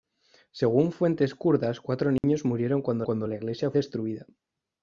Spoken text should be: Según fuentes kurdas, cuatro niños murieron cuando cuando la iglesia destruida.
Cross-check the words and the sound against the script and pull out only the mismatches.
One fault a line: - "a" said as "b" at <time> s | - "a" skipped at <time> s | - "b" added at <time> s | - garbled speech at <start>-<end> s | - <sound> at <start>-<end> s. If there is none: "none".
- dropout at 2.2-2.2 s